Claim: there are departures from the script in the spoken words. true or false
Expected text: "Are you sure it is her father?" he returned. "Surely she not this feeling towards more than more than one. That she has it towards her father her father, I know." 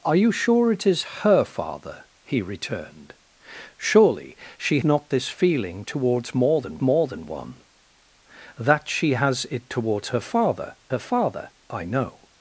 false